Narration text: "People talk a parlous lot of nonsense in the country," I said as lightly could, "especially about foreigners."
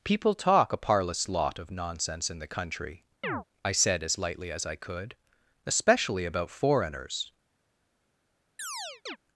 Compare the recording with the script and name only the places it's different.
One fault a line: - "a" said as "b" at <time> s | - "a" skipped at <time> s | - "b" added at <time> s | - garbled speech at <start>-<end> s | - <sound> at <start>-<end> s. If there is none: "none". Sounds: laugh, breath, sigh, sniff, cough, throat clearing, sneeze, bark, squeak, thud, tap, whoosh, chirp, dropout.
- chirp at 3.2-3.4 s
- "as I" added at 4.5 s
- chirp at 8.6-9.2 s